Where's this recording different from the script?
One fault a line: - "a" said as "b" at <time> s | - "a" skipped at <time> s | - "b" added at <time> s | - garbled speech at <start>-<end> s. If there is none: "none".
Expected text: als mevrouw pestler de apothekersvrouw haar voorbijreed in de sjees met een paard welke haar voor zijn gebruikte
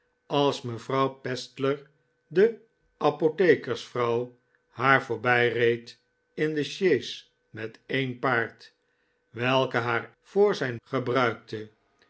none